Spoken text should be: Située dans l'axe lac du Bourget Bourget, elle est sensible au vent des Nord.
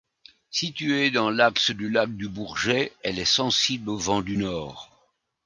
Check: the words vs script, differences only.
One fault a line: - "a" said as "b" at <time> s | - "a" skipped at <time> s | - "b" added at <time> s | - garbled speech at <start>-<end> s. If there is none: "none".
- "du" added at 1.7 s
- "Bourget" skipped at 2.9 s
- "des" said as "du" at 4.2 s